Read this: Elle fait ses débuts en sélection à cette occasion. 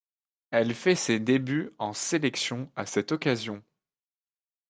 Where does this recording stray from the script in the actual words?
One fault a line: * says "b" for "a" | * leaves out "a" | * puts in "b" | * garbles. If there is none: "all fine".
all fine